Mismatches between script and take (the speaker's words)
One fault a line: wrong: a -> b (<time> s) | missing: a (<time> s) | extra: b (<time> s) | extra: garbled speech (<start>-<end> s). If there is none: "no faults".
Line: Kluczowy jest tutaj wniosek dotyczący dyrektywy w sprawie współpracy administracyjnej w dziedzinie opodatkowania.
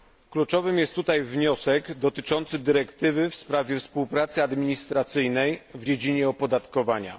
no faults